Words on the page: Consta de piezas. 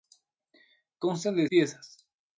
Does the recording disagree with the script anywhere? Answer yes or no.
no